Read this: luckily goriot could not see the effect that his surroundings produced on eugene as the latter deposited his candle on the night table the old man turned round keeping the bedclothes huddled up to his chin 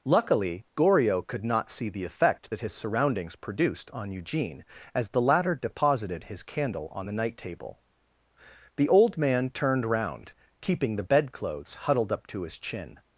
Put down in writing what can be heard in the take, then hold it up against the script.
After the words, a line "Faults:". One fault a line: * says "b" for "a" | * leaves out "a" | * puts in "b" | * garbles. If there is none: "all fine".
luckily goriot could not see the effect that his surroundings produced on eugene as the latter deposited his candle on the night table the old man turned round keeping the bedclothes huddled up to his chin
Faults:
all fine